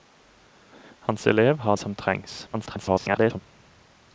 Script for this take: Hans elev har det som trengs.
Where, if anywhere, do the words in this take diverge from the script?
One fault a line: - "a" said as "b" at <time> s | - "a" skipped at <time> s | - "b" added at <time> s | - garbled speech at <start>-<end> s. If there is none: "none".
- "det" skipped at 1.8 s
- garbled speech at 2.5-3.4 s